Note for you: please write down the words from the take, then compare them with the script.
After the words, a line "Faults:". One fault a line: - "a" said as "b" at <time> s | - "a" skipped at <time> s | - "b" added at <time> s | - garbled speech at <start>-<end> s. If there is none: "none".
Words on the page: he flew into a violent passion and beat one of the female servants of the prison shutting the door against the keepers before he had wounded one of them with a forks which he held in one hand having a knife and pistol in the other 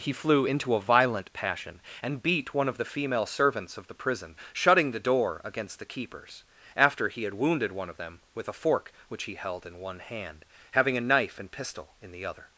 he flew into a violent passion and beat one of the female servants of the prison shutting the door against the keepers after he had wounded one of them with a fork which he held in one hand having a knife and pistol in the other
Faults:
- "before" said as "after" at 6.8 s
- "forks" said as "fork" at 8.6 s